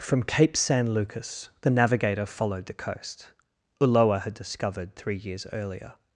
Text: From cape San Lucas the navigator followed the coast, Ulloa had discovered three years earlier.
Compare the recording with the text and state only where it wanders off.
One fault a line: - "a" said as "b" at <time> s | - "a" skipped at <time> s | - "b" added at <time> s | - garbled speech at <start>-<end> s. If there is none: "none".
none